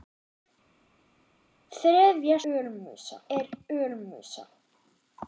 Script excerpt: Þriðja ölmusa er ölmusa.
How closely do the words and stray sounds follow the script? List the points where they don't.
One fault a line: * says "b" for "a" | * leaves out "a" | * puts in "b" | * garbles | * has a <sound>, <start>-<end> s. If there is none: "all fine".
all fine